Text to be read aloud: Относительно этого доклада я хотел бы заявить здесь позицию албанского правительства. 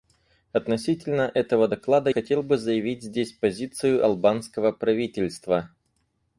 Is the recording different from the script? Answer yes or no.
yes